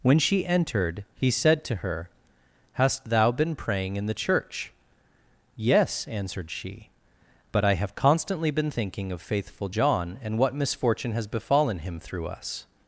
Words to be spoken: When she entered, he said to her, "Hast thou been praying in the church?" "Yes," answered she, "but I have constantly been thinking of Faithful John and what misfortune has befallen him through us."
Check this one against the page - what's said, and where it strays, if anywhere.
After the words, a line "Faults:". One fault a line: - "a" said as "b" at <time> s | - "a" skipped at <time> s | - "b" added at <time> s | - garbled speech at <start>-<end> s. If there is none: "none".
When she entered, he said to her, "Hast thou been praying in the church?" "Yes," answered she, "but I have constantly been thinking of Faithful John and what misfortune has befallen him through us."
Faults:
none